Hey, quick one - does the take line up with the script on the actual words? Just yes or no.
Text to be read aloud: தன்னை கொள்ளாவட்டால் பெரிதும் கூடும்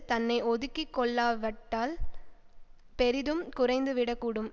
no